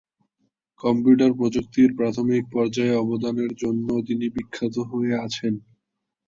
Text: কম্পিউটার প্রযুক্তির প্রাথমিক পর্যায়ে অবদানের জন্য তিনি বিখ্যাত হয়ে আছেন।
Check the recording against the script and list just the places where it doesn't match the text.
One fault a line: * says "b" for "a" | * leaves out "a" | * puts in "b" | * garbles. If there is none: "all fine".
all fine